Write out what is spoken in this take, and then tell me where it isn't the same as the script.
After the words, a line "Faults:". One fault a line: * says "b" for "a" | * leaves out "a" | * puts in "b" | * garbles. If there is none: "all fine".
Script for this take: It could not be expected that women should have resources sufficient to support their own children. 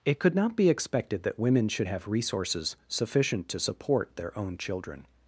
It could not be expected that women should have resources sufficient to support their own children.
Faults:
all fine